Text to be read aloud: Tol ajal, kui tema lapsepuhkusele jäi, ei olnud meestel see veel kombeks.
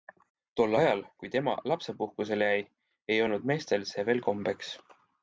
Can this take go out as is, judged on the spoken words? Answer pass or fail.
pass